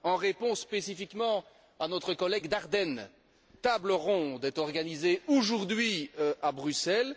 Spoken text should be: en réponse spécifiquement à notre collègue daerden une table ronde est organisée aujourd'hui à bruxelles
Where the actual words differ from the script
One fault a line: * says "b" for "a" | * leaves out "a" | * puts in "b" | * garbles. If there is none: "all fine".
* leaves out "une"